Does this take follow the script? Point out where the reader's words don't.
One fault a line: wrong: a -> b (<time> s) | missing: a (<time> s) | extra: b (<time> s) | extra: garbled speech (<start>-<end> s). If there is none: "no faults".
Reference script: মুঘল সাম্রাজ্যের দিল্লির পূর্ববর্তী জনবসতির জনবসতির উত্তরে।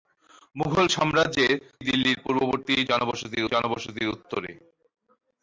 no faults